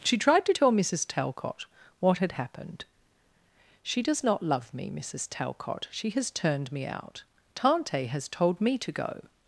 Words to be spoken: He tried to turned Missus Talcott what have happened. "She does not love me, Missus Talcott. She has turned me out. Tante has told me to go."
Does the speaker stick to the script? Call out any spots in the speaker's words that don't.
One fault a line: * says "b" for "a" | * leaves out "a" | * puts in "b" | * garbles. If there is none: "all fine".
* says "She" for "He"
* says "tell" for "turned"
* says "had" for "have"